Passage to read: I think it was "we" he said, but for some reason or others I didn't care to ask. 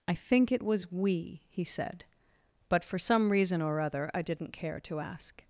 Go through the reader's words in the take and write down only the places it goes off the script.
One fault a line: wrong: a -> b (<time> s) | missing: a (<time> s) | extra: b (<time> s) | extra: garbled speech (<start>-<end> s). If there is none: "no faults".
wrong: others -> other (3.8 s)